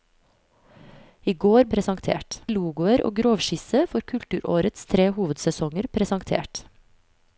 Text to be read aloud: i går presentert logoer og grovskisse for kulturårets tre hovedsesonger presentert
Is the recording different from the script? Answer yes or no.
no